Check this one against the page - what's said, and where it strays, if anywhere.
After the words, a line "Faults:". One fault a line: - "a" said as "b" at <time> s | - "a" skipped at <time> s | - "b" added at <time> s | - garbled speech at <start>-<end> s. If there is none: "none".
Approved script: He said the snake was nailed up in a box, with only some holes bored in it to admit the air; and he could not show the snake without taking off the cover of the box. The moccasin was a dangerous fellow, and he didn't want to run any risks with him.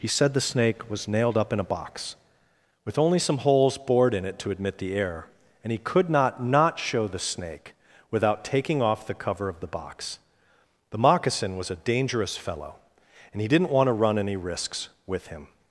He said the snake was nailed up in a box, with only some holes bored in it to admit the air; and he could not not show the snake without taking off the cover of the box. The moccasin was a dangerous fellow, and he didn't want to run any risks with him.
Faults:
- "not" added at 6.4 s